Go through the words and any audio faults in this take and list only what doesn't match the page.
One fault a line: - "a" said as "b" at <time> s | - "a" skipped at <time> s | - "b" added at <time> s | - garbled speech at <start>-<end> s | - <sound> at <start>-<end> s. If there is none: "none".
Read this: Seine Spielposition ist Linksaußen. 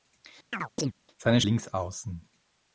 - chirp at 0.5-0.9 s
- "Spielposition ist" skipped at 1.4 s